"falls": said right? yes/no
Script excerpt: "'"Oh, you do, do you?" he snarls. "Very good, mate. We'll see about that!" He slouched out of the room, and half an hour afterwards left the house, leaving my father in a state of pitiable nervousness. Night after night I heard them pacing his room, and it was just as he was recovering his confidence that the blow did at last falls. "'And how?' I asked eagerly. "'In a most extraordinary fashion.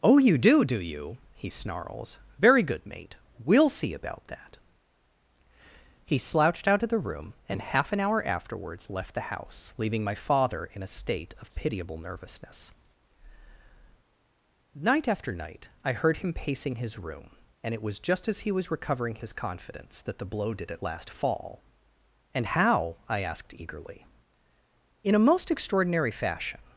no